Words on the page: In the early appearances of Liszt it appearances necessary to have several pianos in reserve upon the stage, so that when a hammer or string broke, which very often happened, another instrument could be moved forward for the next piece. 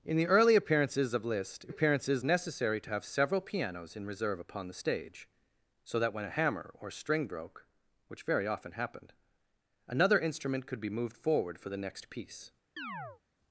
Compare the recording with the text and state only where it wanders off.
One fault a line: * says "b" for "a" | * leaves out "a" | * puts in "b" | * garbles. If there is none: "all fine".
all fine